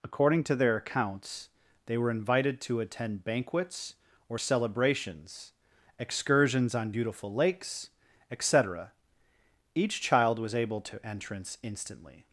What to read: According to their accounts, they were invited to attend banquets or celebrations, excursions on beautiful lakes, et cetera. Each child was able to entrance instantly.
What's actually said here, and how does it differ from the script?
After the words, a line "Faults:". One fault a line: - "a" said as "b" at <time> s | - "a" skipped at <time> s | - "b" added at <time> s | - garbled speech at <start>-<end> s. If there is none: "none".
According to their accounts, they were invited to attend banquets or celebrations, excursions on beautiful lakes, et cetera. Each child was able to entrance instantly.
Faults:
none